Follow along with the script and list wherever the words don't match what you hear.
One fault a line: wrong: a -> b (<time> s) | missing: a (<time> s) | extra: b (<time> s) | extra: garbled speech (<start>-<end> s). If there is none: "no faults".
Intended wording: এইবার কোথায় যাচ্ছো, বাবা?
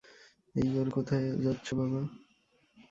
no faults